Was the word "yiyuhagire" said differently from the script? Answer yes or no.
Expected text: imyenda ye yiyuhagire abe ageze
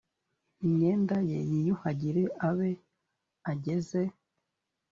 no